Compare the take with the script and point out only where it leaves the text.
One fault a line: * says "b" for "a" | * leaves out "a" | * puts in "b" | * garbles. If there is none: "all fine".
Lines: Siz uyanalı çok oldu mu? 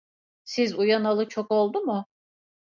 all fine